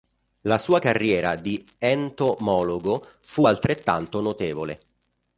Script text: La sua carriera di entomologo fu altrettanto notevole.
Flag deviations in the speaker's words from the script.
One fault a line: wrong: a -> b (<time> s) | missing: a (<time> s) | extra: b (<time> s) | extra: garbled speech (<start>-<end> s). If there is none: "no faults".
no faults